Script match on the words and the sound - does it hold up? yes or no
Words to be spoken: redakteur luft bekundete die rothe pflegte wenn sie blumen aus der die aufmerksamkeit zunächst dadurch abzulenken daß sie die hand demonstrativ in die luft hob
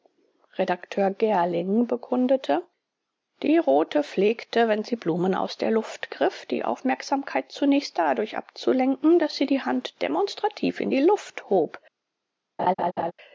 no